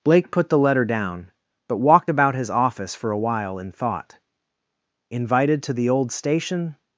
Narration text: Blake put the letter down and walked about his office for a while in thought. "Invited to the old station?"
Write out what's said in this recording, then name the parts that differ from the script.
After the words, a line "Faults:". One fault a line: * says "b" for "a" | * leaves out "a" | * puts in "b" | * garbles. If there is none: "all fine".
Blake put the letter down but walked about his office for a while in thought. "Invited to the old station?"
Faults:
* says "but" for "and"